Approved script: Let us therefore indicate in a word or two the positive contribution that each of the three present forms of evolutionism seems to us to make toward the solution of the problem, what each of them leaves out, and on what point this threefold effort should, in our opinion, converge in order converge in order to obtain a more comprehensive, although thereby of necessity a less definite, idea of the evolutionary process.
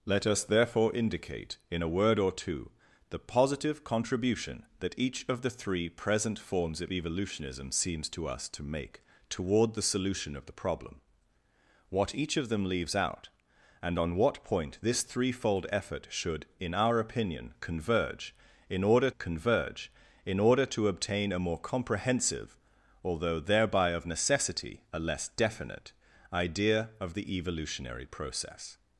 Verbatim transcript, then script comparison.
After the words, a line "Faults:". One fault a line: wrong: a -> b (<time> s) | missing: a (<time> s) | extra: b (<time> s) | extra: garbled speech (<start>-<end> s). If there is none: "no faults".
Let us therefore indicate in a word or two the positive contribution that each of the three present forms of evolutionism seems to us to make toward the solution of the problem, what each of them leaves out, and on what point this threefold effort should, in our opinion, converge in order converge in order to obtain a more comprehensive, although thereby of necessity a less definite, idea of the evolutionary process.
Faults:
no faults